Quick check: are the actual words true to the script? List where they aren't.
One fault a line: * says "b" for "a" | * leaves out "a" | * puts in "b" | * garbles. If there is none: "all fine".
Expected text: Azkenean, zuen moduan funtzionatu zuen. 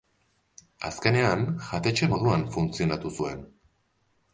* says "jatetxe" for "zuen"